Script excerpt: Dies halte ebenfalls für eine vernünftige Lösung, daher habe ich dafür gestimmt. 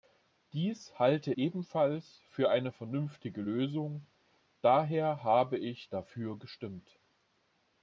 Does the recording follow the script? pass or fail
pass